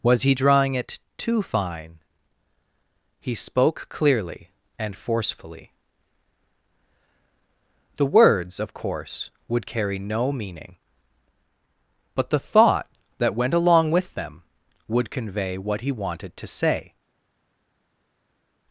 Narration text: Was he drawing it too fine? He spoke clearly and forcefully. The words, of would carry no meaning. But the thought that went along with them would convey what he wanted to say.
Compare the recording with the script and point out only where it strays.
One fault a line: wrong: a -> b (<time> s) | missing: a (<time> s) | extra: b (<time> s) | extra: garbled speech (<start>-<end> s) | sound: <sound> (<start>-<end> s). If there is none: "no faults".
extra: course (8.7 s)